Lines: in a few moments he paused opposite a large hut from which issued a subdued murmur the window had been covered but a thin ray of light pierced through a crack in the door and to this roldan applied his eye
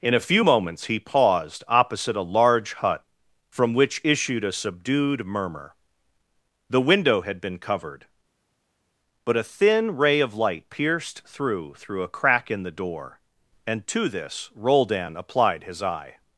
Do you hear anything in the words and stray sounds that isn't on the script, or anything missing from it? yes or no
yes